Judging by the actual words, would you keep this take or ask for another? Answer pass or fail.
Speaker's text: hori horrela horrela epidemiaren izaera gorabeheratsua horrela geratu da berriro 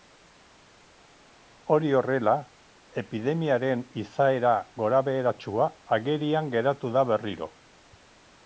fail